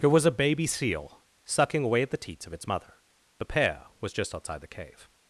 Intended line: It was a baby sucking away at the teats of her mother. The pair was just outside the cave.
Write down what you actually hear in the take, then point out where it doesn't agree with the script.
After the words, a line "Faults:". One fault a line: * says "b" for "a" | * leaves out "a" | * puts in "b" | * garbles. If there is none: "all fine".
It was a baby seal sucking away at the teats of its mother. The pair was just outside the cave.
Faults:
* puts in "seal"
* says "its" for "her"